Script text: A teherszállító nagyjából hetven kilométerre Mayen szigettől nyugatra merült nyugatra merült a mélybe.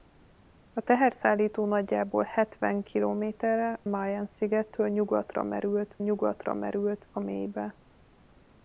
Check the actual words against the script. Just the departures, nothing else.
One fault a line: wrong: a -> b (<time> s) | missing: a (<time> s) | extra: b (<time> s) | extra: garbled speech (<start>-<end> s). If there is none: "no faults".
no faults